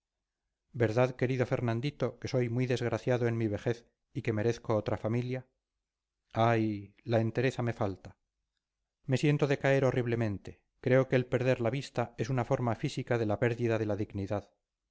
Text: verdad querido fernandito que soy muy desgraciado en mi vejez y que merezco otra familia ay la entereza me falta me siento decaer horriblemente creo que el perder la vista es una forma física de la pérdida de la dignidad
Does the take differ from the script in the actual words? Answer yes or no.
no